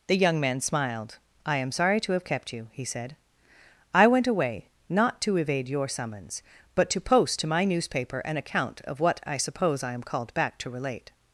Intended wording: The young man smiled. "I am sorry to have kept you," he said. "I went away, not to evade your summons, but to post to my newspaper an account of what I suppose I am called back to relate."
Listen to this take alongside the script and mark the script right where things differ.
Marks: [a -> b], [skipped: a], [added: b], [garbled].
The young man smiled. "I am sorry to have kept you," he said. "I went away, not to evade your summons, but to post to my newspaper an account of what I suppose I am called back to relate."